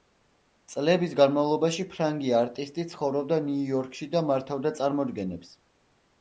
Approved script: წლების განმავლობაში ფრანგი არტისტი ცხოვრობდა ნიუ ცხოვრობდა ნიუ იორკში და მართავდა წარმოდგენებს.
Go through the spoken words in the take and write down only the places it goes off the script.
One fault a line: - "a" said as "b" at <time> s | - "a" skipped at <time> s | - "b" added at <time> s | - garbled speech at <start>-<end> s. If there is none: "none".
- "ცხოვრობდა ნიუ" skipped at 3.7 s